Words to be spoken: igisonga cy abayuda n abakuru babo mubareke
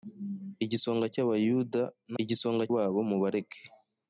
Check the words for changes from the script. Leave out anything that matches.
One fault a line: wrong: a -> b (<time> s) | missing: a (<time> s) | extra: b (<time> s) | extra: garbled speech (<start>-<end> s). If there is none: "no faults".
wrong: abakuru -> igisonga (2.2 s)